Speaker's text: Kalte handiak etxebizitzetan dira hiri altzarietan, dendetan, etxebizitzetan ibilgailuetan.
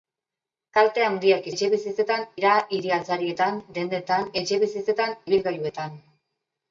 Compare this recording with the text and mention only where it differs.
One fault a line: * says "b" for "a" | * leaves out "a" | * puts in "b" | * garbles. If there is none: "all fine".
all fine